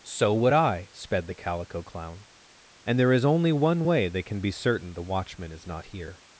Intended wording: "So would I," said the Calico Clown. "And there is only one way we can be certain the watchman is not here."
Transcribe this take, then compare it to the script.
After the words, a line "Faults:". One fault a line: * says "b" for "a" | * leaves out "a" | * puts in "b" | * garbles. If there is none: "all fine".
"So would I," sped the Calico Clown. "And there is only one way they can be certain the watchman is not here."
Faults:
* says "sped" for "said"
* says "they" for "we"